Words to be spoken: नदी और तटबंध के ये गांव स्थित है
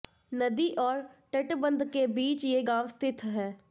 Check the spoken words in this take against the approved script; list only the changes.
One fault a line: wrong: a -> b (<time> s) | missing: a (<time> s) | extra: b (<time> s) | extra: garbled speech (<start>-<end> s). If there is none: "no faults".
extra: बीच (2.1 s)